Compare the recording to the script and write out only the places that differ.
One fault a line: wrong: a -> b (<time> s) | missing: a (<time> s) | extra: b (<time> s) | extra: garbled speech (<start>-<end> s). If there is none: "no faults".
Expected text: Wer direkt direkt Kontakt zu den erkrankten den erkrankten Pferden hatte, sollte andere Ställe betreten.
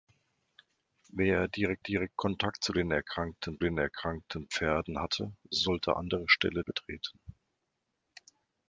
no faults